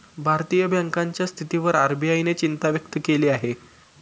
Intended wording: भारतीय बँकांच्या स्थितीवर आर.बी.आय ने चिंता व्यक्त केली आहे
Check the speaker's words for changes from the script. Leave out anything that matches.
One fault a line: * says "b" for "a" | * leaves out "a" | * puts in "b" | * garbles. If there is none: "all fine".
all fine